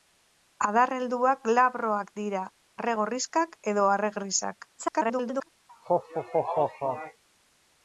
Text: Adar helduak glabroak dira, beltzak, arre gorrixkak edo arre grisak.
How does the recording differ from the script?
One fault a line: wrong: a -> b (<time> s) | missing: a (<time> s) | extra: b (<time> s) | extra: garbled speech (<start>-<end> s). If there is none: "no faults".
missing: beltzak (2.4 s)
extra: garbled speech (4.8-5.5 s)